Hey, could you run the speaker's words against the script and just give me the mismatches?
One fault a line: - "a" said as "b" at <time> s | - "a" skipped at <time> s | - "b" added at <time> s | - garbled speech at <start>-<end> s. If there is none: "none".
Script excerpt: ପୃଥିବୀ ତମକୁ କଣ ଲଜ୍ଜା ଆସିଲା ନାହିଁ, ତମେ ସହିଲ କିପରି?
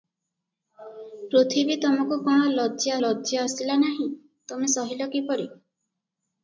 - "ଲଜ୍ଜା" added at 3.0 s